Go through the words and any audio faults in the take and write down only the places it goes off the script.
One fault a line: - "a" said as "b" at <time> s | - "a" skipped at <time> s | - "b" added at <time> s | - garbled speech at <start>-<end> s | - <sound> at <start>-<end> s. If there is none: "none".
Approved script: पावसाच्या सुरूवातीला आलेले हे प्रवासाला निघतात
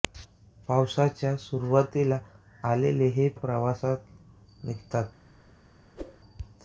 - whoosh at 6.0-6.2 s